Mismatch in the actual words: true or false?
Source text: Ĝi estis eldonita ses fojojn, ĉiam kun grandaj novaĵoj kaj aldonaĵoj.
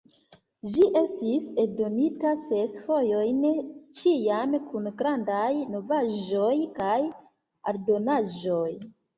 false